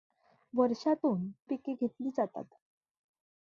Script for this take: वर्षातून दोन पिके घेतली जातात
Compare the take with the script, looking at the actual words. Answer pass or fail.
fail